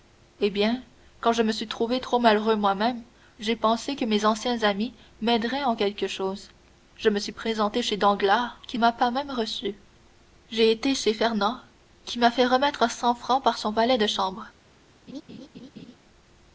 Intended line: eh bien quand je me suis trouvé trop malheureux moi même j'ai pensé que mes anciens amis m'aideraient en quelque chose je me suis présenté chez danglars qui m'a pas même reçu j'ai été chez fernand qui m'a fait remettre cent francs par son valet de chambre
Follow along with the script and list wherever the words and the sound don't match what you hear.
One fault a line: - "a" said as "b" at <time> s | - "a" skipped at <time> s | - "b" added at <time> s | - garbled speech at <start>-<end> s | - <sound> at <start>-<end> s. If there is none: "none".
- laugh at 15.1-16.0 s